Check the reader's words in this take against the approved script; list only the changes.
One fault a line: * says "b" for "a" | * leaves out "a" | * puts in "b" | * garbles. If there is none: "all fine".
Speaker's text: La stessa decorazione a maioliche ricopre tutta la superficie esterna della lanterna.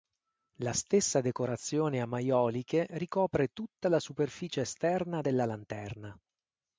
all fine